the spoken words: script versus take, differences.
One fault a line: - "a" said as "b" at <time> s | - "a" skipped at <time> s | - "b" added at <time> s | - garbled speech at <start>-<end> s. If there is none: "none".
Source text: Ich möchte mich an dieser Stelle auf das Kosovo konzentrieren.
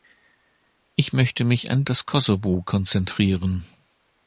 - "dieser Stelle auf" skipped at 1.8 s